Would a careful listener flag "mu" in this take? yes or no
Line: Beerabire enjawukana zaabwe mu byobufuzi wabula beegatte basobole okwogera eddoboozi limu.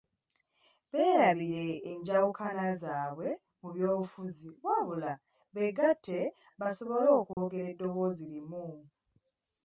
no